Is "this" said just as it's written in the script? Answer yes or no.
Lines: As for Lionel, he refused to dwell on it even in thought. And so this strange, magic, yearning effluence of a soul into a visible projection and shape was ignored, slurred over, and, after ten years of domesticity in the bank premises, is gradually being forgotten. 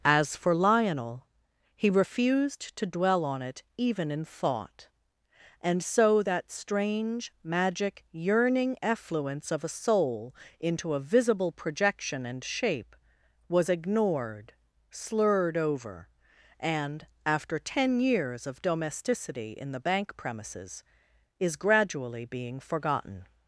no